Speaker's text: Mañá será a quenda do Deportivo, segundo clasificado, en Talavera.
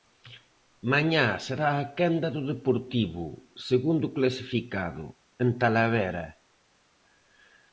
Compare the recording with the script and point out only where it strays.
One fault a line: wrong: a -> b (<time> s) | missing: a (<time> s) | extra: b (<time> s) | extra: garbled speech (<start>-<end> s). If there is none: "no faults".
no faults